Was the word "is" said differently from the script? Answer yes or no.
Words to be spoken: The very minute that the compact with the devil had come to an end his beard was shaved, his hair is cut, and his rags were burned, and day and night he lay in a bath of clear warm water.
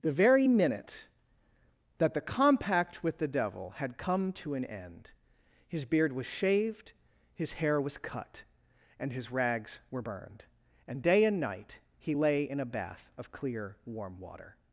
yes